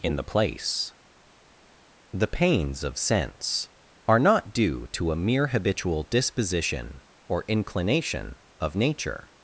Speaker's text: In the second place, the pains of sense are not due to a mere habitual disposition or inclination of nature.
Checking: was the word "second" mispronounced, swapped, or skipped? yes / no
yes